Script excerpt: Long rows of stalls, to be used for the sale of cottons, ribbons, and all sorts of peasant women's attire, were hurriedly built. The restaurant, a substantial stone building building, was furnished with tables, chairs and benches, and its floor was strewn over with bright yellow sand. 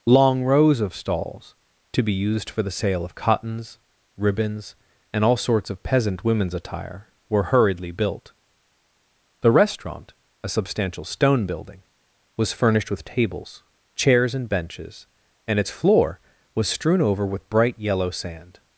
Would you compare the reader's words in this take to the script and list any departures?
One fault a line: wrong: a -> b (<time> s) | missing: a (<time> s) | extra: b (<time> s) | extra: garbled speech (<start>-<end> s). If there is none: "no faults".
missing: building (11.8 s)